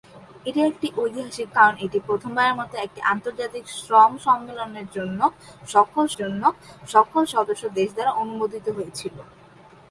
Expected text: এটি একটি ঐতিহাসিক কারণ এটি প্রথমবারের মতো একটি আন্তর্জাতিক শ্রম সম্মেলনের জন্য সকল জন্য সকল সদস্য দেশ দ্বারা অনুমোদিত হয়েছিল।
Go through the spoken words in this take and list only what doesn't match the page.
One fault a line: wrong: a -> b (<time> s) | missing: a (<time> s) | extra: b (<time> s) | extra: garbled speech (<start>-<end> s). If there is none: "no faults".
no faults